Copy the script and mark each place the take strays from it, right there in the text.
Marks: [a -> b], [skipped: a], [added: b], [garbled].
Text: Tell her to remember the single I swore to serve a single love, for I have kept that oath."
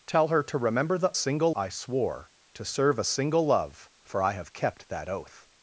Tell her to remember the single I swore to serve a single love, for I have kept that oath."